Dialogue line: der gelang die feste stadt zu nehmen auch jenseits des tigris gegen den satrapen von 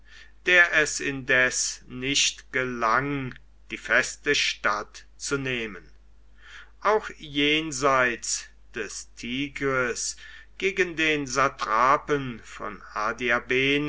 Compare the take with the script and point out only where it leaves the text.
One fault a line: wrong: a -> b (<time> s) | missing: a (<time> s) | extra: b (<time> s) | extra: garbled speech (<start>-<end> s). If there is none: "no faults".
extra: es indes nicht (0.7 s)